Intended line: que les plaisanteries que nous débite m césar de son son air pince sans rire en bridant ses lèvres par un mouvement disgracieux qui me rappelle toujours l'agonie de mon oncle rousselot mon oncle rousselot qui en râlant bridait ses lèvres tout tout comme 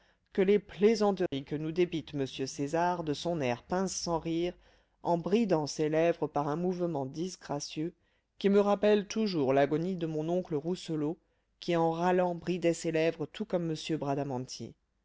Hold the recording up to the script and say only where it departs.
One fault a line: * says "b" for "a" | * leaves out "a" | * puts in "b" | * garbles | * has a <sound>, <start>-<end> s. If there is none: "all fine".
* has a dropout, 1.3-1.3 s
* leaves out "son"
* leaves out "mon oncle rousselot"
* leaves out "tout"